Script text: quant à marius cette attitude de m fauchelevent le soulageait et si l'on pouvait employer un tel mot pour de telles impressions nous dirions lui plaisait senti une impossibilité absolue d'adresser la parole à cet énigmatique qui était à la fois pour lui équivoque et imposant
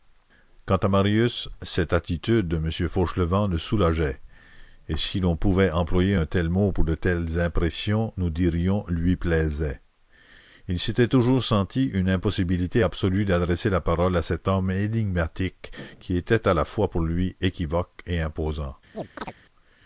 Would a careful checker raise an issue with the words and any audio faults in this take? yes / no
yes